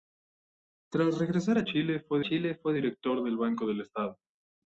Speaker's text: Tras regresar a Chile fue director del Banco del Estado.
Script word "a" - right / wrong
right